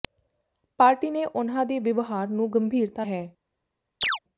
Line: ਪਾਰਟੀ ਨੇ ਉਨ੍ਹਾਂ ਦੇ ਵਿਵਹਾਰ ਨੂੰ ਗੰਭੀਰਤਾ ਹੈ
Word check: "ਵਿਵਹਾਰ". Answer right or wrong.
right